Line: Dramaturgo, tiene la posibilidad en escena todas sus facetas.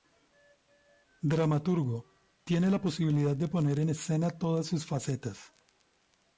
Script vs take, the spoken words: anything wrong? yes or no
yes